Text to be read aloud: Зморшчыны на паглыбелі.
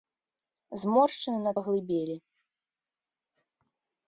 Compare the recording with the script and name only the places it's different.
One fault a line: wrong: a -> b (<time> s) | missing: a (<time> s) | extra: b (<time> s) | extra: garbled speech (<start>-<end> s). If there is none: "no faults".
no faults